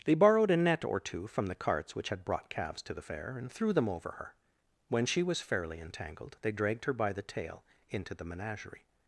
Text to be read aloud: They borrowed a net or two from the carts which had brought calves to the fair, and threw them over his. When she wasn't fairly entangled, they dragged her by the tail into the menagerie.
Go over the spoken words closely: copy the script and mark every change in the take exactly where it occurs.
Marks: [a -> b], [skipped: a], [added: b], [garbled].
They borrowed a net or two from the carts which had brought calves to the fair, and threw them over [his. -> her] When she [wasn't -> was] fairly entangled, they dragged her by the tail into the menagerie.